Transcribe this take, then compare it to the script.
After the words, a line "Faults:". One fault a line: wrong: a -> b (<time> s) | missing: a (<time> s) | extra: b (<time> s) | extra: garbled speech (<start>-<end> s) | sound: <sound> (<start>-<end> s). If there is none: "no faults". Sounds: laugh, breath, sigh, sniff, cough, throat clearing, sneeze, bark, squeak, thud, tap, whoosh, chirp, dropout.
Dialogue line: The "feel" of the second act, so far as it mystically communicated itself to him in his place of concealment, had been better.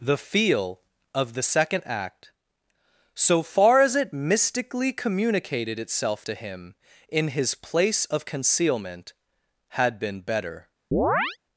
The "feel" of the second act, so far as it mystically communicated itself to him in his place of concealment, had been better.
Faults:
sound: chirp (10.9-11.4 s)